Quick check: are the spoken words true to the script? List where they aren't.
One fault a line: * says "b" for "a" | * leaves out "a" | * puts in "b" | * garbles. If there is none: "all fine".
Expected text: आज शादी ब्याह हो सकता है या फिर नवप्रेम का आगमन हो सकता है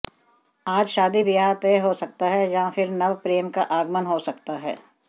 * puts in "तय"